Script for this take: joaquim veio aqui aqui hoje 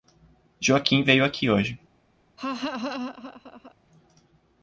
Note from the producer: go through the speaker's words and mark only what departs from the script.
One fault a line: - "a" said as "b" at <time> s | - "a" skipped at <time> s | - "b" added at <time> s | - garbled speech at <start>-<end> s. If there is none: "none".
- "aqui" skipped at 1.5 s